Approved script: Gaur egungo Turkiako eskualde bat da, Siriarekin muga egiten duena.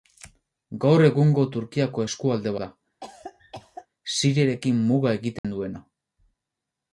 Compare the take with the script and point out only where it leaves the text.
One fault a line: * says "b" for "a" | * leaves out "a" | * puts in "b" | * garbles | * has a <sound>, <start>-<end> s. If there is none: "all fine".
* leaves out "bat"
* has a cough, 3.0-3.9 s
* has a dropout, 5.4-5.4 s